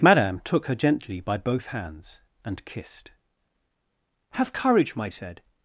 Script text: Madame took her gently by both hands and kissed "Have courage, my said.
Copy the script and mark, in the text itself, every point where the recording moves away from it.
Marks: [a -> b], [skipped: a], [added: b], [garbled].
Madame took her gently by both hands and kissed "Have courage, my said.